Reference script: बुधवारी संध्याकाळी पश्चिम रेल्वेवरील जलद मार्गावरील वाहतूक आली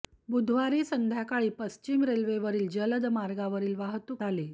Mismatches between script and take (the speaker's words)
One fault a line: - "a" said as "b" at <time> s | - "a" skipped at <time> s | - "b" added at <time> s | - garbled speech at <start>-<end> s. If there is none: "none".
none